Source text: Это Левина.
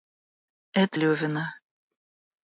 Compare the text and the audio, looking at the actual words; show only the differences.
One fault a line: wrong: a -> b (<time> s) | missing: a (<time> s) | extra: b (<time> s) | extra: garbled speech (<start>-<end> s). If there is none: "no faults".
no faults